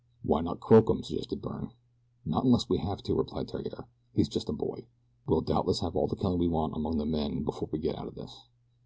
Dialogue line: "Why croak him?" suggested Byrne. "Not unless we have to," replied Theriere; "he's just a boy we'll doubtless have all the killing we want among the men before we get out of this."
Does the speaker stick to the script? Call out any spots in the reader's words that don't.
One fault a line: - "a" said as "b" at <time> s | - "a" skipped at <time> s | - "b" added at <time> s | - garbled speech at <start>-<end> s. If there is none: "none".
- "not" added at 0.4 s